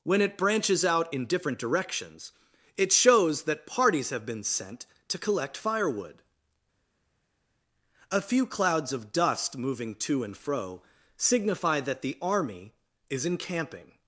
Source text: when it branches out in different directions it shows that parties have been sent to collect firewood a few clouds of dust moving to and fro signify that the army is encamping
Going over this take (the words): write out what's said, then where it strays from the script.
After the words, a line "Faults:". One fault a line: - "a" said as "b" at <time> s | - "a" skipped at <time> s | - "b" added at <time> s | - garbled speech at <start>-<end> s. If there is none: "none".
when it branches out in different directions it shows that parties have been sent to collect firewood a few clouds of dust moving to and fro signify that the army is encamping
Faults:
none